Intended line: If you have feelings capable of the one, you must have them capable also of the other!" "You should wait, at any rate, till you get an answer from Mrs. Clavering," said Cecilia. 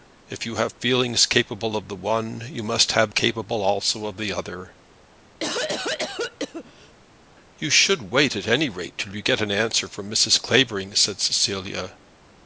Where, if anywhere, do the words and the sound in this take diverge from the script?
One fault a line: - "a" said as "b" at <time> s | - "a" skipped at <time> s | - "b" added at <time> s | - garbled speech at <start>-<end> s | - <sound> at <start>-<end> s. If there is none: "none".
- "them" skipped at 3.1 s
- cough at 5.4-7.0 s